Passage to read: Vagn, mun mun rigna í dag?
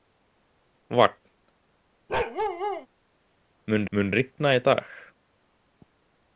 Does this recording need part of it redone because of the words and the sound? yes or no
yes